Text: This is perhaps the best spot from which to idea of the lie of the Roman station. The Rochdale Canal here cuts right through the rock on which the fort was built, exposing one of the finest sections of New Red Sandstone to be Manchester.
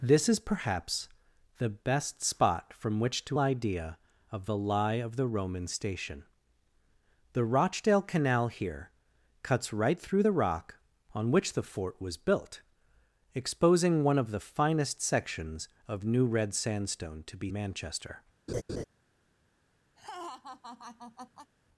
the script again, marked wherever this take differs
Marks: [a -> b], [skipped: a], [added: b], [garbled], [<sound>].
This is perhaps the best spot from which to idea of the lie of the Roman station. The Rochdale Canal here cuts right through the rock on which the fort was built, exposing one of the finest sections of New Red Sandstone to be Manchester. [laugh] [laugh]